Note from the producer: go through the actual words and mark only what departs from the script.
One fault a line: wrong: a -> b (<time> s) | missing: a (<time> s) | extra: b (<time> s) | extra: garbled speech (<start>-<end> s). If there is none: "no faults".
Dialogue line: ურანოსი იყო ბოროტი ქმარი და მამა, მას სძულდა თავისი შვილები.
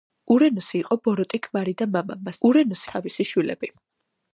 wrong: სძულდა -> ურანოსი (2.5 s)